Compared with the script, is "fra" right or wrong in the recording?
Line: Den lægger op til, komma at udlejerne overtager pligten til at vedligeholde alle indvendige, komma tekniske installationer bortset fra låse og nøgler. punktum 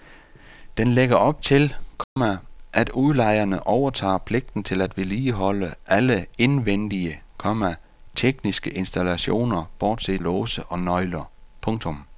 wrong